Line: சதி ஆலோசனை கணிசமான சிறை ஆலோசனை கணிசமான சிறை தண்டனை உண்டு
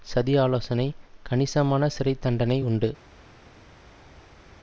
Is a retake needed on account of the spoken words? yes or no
yes